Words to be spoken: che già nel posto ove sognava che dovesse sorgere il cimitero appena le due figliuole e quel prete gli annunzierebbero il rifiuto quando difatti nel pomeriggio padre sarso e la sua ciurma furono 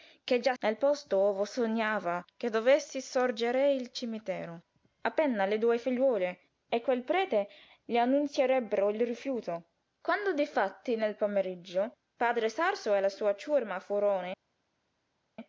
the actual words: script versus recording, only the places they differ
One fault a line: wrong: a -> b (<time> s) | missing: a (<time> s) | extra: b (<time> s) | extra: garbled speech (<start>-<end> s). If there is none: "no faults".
no faults